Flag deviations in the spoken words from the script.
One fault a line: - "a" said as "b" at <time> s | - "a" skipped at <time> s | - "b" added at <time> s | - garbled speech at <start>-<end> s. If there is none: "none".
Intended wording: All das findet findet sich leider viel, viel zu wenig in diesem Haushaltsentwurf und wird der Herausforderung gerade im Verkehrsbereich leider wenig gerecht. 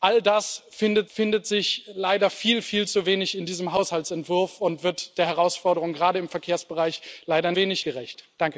none